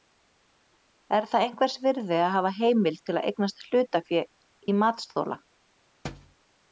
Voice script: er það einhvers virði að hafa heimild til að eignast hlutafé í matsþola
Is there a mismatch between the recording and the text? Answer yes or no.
no